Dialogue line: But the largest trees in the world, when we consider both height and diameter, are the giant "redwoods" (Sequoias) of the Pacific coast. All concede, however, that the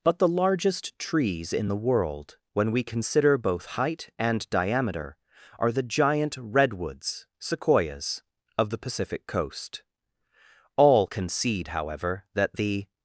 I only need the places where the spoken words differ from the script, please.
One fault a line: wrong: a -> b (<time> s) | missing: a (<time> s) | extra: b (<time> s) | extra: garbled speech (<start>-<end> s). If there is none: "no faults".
no faults